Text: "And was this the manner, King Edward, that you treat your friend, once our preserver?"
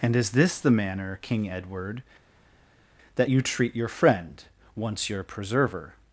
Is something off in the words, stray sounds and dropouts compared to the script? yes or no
yes